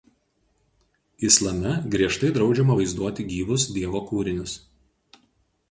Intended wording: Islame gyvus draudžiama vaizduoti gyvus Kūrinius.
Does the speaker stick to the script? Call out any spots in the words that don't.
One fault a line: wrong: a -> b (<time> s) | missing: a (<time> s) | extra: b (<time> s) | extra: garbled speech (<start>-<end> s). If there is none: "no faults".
wrong: gyvus -> griežtai (1.9 s)
extra: Dievo (3.8 s)